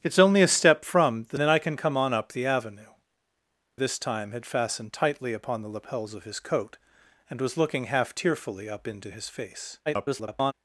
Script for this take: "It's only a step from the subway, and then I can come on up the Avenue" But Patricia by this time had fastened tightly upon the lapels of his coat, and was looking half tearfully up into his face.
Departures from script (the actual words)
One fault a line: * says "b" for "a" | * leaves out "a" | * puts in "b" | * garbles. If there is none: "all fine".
* leaves out "subway and"
* leaves out "But Patricia by"
* garbles